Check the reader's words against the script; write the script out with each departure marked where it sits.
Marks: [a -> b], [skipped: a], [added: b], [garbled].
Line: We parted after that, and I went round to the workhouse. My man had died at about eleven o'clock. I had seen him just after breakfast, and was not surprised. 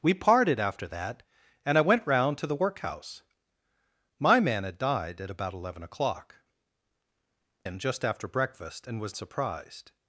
We parted after that, and I went round to the workhouse. My man had died at about eleven o'clock. [skipped: I had seen] him just after breakfast, and was [skipped: not] surprised.